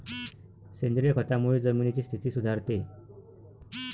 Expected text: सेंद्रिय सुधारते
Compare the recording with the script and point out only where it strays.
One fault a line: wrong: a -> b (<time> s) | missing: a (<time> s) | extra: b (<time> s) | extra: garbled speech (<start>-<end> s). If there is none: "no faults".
extra: खतामुळे जमिनीची स्थिती (1.1 s)